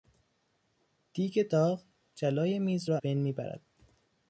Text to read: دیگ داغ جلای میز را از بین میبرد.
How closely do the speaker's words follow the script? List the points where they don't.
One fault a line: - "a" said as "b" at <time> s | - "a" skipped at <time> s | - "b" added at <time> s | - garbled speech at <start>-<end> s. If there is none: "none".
- "از" skipped at 3.0 s